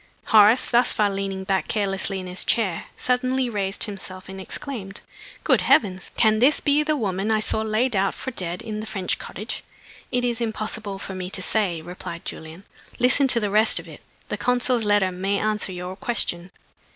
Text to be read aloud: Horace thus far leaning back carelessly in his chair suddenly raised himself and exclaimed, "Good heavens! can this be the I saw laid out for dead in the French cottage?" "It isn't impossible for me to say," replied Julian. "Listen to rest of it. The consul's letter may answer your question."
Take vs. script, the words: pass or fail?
fail